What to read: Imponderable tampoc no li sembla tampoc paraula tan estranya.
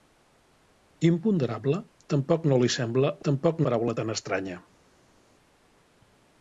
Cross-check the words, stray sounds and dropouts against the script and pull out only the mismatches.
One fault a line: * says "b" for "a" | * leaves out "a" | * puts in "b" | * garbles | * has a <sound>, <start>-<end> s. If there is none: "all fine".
all fine